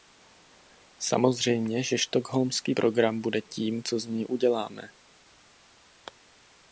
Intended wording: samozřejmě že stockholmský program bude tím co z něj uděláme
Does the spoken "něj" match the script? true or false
true